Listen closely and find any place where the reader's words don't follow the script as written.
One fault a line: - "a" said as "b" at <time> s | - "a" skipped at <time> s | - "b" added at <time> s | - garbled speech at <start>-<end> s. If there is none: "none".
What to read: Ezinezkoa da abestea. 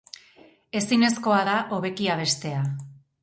- "hobeki" added at 1.7 s